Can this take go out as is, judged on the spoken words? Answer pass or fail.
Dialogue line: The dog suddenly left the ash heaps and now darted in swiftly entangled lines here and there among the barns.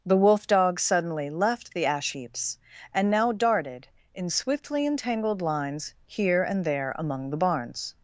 fail